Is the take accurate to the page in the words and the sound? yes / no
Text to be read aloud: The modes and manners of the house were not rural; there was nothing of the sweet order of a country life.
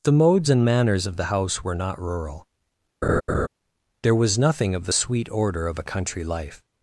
no